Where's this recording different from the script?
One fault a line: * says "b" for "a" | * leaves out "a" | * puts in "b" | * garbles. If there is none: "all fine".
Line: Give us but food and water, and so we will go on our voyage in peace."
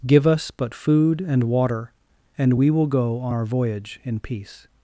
* leaves out "so"